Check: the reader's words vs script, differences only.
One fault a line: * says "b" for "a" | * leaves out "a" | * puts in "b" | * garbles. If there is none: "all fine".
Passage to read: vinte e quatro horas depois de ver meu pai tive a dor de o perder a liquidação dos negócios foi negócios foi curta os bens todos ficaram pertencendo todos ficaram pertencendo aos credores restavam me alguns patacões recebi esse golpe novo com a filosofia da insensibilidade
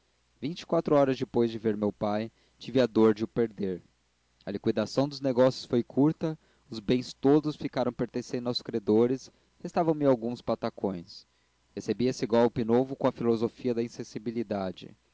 * leaves out "negócios foi"
* leaves out "todos ficaram pertencendo"